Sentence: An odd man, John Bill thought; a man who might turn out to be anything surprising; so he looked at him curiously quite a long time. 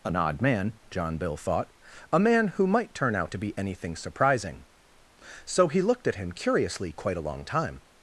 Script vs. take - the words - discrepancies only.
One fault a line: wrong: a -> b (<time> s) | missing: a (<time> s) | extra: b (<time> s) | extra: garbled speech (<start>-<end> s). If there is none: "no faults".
no faults